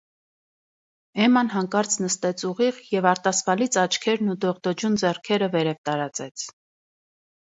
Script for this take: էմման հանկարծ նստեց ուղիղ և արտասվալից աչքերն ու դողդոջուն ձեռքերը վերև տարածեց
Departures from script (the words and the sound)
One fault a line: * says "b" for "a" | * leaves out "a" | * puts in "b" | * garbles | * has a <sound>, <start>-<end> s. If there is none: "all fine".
all fine